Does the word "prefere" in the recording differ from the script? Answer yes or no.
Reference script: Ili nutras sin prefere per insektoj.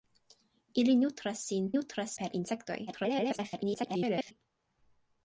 yes